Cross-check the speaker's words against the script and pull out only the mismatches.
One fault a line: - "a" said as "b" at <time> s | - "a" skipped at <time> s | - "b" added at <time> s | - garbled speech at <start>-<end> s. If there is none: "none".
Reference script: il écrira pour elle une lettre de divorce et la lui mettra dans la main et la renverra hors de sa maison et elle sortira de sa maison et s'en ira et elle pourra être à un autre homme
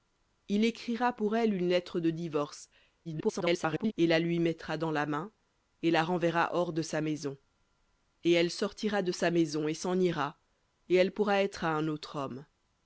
- garbled speech at 3.0-3.9 s